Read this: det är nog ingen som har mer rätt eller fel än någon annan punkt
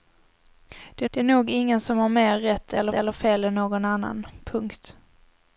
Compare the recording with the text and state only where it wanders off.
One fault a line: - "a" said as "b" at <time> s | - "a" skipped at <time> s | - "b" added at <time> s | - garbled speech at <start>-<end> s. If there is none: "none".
- "det" added at 1.1 s
- "eller" added at 2.9 s